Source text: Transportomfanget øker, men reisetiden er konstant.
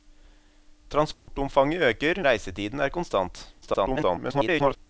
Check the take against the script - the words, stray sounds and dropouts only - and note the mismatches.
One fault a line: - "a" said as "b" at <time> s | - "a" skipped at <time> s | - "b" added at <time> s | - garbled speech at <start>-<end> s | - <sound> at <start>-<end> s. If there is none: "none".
- dropout at 1.1-1.3 s
- "men" skipped at 2.2 s
- garbled speech at 3.6-4.8 s